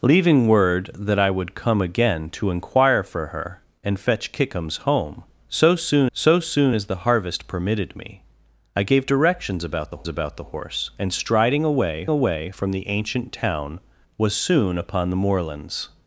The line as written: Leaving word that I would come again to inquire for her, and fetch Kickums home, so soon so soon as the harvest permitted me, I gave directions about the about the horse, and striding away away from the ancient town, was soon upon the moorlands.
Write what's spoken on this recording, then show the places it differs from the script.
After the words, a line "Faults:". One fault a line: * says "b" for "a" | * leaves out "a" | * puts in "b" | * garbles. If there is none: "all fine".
Leaving word that I would come again to inquire for her, and fetch Kickums home, so soon so soon as the harvest permitted me, I gave directions about the about the horse, and striding away away from the ancient town, was soon upon the moorlands.
Faults:
all fine